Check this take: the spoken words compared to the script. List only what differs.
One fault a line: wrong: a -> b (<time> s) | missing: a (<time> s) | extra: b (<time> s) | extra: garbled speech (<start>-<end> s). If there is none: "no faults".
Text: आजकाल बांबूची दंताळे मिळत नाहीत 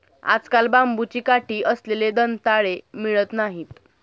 extra: काठी असलेले (1.2 s)